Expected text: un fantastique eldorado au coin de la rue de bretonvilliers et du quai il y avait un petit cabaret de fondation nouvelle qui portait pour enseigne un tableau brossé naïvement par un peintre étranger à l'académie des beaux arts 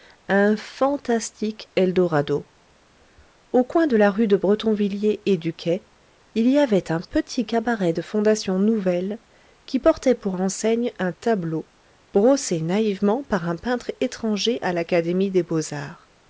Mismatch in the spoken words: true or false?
false